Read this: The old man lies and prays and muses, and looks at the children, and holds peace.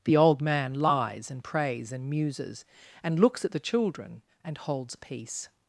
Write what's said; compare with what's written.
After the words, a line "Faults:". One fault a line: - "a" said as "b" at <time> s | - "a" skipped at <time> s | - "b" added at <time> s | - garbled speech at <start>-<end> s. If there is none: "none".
The old man lies and prays and muses, and looks at the children, and holds peace.
Faults:
none